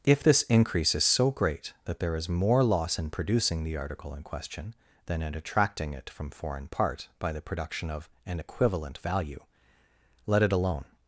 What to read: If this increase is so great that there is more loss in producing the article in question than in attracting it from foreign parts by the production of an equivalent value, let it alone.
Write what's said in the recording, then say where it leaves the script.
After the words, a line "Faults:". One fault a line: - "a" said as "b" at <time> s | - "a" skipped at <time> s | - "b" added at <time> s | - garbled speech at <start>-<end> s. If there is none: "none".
If this increase is so great that there is more loss in producing the article in question than in attracting it from foreign part by the production of an equivalent value, let it alone.
Faults:
- "parts" said as "part" at 6.7 s